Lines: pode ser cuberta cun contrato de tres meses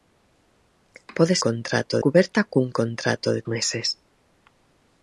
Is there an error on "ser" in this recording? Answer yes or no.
yes